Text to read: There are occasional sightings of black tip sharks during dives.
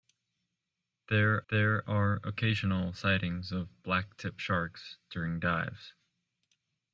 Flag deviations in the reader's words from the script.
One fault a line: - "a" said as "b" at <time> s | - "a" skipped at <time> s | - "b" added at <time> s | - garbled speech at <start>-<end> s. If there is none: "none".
- "there" added at 1.5 s